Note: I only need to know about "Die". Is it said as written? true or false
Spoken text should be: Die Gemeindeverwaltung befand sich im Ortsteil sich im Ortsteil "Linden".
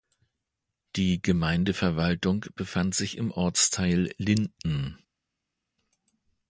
true